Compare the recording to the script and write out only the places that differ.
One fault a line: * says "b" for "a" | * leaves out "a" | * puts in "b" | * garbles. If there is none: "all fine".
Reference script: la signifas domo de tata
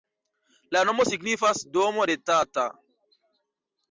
* puts in "nomo"